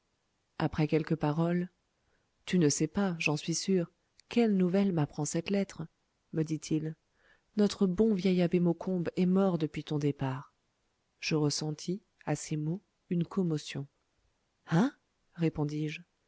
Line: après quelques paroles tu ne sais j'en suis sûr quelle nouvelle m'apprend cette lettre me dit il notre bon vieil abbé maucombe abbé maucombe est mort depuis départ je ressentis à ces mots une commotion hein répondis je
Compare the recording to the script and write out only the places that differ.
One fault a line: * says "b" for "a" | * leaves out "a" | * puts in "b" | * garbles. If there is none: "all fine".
* puts in "pas"
* leaves out "abbé maucombe"
* puts in "ton"